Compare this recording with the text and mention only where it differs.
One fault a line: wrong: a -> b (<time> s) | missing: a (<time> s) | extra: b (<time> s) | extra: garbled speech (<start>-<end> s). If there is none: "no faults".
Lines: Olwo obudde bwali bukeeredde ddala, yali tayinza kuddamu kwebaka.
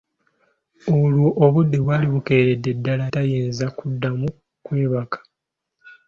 missing: yali (3.1 s)